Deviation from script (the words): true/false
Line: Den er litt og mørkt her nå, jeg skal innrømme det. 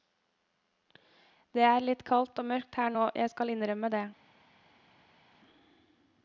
true